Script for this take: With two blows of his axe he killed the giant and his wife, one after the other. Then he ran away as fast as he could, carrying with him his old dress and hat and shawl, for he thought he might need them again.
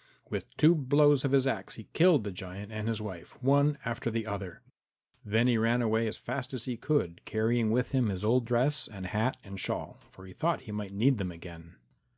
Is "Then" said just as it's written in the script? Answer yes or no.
yes